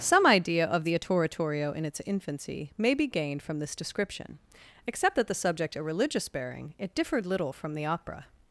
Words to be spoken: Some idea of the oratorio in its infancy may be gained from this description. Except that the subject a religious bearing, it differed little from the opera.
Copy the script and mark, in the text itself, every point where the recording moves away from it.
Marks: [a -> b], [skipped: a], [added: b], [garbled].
Some idea of the oratorio in its infancy may be gained from this description. Except that the subject a religious bearing, it differed little from the opera.